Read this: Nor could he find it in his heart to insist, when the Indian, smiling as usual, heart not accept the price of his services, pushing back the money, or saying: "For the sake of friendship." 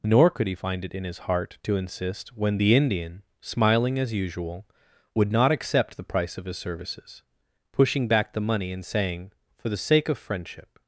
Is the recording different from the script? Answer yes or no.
yes